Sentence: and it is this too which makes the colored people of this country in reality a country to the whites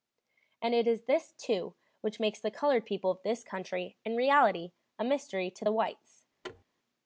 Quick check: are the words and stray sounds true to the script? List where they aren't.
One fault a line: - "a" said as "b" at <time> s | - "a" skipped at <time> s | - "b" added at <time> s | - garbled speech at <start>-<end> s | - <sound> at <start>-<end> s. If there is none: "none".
- "country" said as "mystery" at 5.0 s
- thud at 6.4-6.6 s